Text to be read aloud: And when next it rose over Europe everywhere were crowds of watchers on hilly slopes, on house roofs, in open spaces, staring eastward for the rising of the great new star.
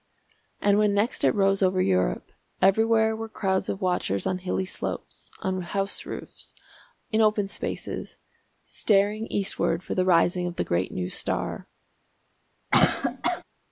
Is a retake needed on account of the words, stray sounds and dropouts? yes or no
yes